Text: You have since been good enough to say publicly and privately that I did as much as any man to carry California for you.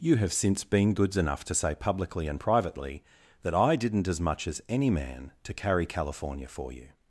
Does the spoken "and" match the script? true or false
true